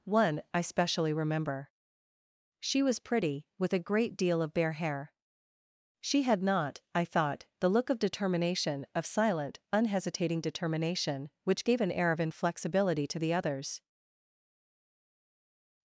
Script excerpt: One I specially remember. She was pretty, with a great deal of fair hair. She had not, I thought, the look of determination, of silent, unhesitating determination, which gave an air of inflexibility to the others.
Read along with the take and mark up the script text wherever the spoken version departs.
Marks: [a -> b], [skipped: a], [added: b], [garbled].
One I specially remember. She was pretty, with a great deal of [fair -> bare] hair. She had not, I thought, the look of determination, of silent, unhesitating determination, which gave an air of inflexibility to the others.